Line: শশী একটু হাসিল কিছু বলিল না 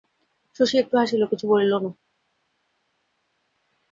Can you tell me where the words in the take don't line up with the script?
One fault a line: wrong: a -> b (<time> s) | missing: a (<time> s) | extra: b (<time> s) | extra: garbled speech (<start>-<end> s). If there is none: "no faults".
no faults